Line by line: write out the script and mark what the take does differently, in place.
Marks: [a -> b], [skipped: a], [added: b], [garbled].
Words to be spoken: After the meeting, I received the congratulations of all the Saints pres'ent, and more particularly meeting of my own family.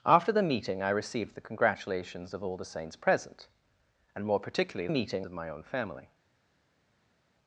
After the meeting, I received the congratulations of all the Saints pres'ent, and more particularly meeting of my own family.